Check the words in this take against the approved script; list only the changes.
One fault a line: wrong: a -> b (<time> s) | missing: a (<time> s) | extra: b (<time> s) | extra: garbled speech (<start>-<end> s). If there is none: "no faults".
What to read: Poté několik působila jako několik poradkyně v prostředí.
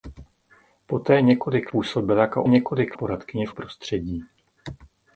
no faults